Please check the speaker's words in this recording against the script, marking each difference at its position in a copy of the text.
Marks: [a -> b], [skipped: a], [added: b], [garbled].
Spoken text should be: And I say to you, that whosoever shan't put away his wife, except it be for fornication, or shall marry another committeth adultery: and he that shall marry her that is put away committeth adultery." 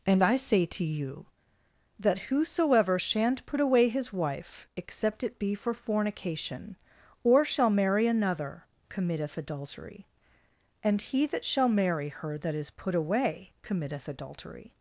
And I say to you, that whosoever shan't put away his wife, except it be for fornication, or shall marry another committeth adultery: and he that shall marry her that is put away committeth adultery."